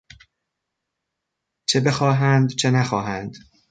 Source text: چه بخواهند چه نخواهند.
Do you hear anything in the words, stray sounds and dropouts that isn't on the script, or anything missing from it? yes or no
no